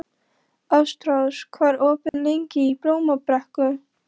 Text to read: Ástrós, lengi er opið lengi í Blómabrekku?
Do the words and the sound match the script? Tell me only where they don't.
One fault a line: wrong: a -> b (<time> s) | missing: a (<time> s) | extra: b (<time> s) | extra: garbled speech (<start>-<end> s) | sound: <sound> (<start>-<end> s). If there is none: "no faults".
wrong: lengi -> hvað (1.6 s)
sound: dropout (2.1-2.1 s)